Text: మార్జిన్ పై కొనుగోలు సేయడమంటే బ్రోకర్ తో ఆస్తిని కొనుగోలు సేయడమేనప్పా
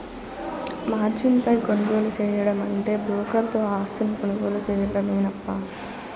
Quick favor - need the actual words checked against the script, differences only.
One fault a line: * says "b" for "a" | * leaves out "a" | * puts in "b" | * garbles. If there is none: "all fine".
all fine